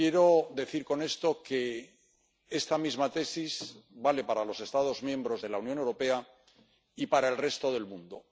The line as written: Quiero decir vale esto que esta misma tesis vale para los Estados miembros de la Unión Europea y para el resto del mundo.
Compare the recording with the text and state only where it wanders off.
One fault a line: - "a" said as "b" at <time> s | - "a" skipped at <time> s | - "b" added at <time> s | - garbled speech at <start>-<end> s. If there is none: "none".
- "vale" said as "con" at 0.8 s